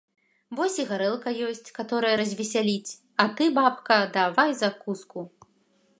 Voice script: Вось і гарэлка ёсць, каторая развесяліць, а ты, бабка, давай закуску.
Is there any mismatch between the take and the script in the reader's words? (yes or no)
no